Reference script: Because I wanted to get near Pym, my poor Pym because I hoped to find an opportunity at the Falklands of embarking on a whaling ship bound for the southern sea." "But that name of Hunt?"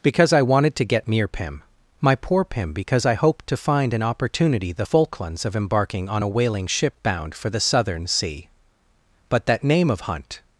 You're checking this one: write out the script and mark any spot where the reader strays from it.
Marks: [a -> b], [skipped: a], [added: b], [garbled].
Because I wanted to get near Pym, my poor Pym because I hoped to find an opportunity [skipped: at] the Falklands of embarking on a whaling ship bound for the southern sea." "But that name of Hunt?"